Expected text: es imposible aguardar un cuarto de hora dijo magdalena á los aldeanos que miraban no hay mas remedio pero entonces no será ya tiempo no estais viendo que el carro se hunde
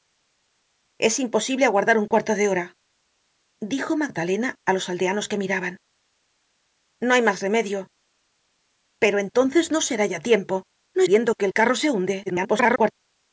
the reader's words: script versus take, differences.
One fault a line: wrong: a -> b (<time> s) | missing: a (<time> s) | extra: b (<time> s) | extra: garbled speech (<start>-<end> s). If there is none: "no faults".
missing: estais (11.0 s)
extra: garbled speech (12.3-12.9 s)